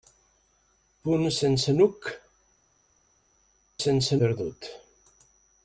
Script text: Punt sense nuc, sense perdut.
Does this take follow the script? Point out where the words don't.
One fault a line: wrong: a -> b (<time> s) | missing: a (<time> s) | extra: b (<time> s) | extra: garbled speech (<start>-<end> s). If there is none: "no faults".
no faults